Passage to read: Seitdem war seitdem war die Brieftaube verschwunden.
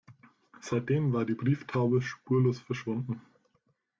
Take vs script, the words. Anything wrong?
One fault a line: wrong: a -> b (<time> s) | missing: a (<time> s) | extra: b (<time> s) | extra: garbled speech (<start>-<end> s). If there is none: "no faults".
missing: seitdem war (1.2 s)
extra: spurlos (2.0 s)